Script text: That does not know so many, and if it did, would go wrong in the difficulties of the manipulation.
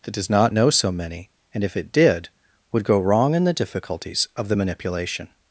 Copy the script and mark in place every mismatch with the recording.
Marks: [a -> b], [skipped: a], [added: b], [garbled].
That does not know so many, and if it did, would go wrong in the difficulties of the manipulation.